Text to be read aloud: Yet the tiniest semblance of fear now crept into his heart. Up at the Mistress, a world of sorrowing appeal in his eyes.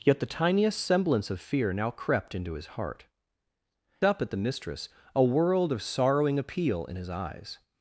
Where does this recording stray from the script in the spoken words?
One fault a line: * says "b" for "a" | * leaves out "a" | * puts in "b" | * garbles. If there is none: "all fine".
all fine